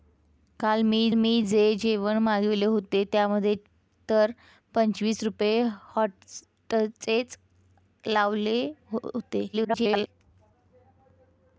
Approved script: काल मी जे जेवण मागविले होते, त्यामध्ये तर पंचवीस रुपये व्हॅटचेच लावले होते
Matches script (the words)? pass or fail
fail